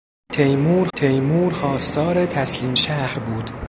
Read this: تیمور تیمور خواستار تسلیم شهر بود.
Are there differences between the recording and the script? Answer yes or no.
no